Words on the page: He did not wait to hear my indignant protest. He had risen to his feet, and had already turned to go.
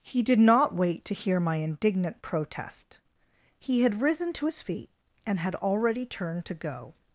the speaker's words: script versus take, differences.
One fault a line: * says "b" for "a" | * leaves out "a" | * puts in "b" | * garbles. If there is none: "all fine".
all fine